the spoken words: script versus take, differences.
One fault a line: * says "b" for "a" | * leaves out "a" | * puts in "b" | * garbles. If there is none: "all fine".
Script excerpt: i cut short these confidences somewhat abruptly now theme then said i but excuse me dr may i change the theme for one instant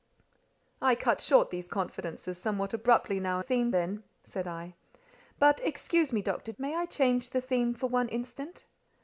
all fine